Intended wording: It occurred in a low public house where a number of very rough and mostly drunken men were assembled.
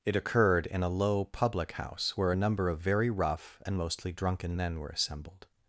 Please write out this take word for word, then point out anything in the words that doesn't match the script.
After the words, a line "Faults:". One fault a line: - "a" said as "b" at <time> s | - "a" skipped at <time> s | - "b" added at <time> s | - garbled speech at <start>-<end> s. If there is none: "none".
It occurred in a low public house where a number of very rough and mostly drunken men were assembled.
Faults:
none